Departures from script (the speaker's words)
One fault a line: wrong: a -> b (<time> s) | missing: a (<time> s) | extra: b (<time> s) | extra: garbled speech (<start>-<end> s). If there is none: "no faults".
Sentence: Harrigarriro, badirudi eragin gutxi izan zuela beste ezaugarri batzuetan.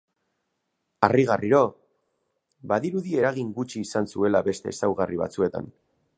no faults